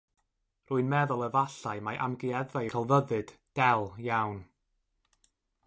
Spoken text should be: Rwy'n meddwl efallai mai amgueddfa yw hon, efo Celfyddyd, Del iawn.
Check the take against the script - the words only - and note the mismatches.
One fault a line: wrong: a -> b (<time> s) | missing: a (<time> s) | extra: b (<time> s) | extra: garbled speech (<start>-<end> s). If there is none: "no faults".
missing: yw hon efo (2.6 s)